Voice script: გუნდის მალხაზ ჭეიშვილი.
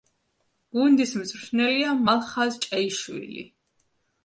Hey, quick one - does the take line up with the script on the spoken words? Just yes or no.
no